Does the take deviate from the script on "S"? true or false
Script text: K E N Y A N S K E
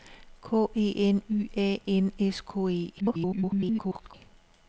false